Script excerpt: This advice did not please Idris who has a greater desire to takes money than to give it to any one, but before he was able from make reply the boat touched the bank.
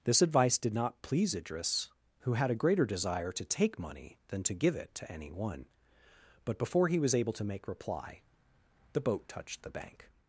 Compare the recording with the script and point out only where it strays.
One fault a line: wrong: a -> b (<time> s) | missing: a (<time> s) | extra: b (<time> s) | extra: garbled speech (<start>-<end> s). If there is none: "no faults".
wrong: has -> had (2.3 s)
wrong: takes -> take (3.5 s)
wrong: from -> to (7.3 s)